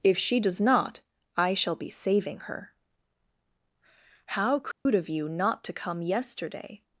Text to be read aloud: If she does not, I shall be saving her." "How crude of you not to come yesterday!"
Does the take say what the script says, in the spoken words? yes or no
yes